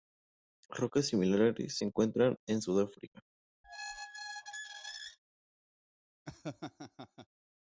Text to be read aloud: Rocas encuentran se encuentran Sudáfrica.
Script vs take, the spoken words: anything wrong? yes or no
yes